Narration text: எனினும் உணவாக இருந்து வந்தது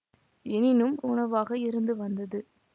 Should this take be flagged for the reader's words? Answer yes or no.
no